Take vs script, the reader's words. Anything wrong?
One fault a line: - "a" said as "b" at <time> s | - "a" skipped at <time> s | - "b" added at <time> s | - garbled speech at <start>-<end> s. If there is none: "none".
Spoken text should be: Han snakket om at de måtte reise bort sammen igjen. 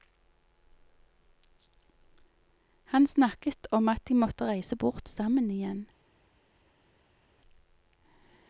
none